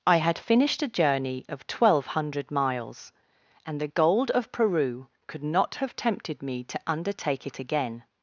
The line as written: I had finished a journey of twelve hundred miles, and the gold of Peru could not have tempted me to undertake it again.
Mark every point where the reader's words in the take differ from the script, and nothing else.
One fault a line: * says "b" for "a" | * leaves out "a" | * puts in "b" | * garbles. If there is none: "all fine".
all fine